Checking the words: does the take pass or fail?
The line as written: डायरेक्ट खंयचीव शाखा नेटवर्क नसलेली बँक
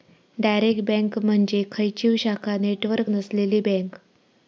fail